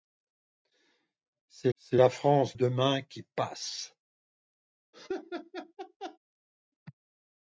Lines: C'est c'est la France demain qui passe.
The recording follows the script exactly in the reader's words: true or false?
true